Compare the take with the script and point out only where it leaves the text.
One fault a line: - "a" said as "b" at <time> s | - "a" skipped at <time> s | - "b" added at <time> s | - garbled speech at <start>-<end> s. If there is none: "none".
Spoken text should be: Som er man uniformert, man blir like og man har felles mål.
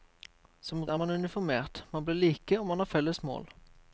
none